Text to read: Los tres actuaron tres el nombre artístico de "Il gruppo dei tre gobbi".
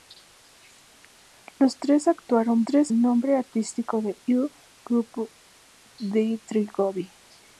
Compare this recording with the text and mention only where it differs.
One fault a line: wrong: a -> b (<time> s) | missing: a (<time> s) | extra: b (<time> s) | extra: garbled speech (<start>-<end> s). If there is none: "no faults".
no faults